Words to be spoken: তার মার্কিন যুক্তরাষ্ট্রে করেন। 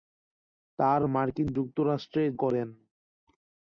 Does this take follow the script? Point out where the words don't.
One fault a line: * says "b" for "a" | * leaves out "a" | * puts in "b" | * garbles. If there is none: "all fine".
all fine